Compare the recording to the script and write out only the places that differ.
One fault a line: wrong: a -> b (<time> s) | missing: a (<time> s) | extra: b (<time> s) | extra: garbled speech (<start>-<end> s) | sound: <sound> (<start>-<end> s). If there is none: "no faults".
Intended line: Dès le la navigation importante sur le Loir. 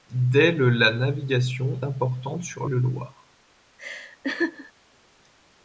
sound: laugh (3.8-4.7 s)